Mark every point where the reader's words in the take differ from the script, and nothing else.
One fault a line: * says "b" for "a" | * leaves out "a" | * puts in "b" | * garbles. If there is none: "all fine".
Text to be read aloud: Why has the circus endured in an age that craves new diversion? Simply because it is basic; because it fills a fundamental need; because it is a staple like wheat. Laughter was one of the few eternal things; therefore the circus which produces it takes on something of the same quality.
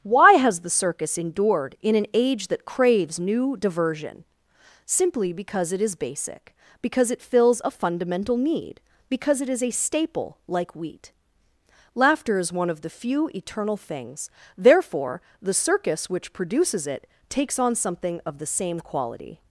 * says "is" for "was"